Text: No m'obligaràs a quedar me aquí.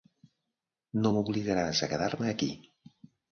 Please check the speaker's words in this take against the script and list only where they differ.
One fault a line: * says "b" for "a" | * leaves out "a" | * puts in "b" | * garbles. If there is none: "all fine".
all fine